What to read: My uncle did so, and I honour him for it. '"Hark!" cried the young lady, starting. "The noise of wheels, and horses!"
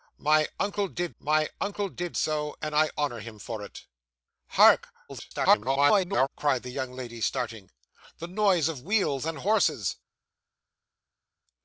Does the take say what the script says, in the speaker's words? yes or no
no